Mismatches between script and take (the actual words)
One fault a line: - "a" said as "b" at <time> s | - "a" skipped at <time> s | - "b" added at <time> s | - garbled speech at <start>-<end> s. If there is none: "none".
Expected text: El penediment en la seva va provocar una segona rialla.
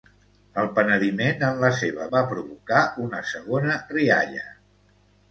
none